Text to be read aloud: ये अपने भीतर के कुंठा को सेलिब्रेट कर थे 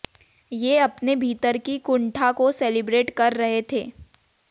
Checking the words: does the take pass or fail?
fail